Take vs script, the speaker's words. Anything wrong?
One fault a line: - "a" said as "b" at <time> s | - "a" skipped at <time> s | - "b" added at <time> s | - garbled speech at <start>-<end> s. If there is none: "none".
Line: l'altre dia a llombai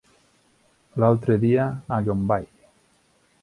none